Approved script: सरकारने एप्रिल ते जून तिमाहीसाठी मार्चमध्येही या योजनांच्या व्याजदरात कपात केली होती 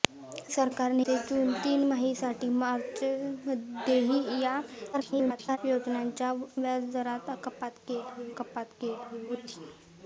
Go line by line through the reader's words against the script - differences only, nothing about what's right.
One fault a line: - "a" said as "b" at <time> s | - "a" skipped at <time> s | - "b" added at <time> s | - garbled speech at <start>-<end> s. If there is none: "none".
- "एप्रिल" skipped at 1.0 s
- garbled speech at 4.9-5.6 s
- "कपात केली" added at 8.4 s